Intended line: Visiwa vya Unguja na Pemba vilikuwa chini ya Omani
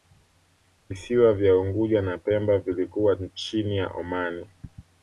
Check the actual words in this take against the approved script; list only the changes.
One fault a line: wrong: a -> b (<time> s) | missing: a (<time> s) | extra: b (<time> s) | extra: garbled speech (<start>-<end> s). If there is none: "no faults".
no faults